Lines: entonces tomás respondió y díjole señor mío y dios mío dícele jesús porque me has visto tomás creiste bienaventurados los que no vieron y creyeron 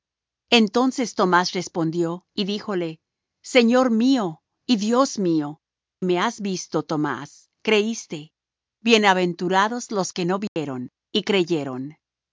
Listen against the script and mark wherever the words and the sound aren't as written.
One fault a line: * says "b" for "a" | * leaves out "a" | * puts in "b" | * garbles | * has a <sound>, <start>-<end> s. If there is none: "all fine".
* leaves out "dícele jesús porque"
* has a dropout, 10.5-10.6 s